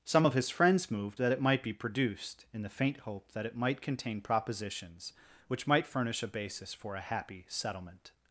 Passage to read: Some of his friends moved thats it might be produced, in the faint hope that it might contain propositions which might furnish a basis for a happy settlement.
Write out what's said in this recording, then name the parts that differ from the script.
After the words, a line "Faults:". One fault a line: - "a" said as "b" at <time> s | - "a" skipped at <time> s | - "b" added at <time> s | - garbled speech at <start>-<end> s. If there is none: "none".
Some of his friends moved that it might be produced, in the faint hope that it might contain propositions which might furnish a basis for a happy settlement.
Faults:
- "thats" said as "that" at 1.2 s